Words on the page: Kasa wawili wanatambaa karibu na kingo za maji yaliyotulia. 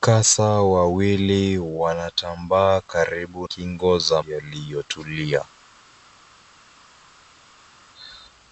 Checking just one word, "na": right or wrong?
wrong